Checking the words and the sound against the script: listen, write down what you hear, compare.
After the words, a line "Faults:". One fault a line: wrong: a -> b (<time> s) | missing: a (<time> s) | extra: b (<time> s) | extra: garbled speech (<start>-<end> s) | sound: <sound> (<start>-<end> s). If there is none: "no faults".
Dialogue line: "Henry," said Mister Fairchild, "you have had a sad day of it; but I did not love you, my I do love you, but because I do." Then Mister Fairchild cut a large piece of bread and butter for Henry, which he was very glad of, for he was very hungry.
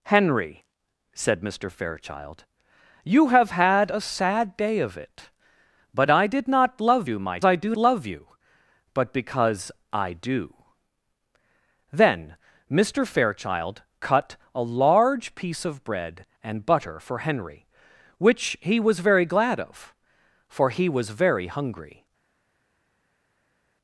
"Henry," said Mister Fairchild, "you have had a sad day of it; but I did not love you, my I do love you, but because I do." Then Mister Fairchild cut a large piece of bread and butter for Henry, which he was very glad of, for he was very hungry.
Faults:
no faults